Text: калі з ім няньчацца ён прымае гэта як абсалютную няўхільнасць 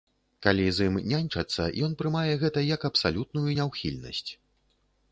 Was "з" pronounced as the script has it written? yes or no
yes